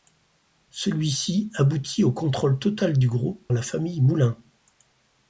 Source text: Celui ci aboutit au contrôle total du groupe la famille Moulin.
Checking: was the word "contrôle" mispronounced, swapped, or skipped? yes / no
no